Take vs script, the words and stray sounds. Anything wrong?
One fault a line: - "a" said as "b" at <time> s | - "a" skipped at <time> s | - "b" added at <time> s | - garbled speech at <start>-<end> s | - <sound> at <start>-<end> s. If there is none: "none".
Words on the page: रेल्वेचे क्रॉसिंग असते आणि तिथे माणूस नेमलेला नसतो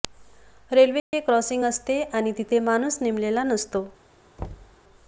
- dropout at 1.0-1.1 s
- thud at 4.4-4.8 s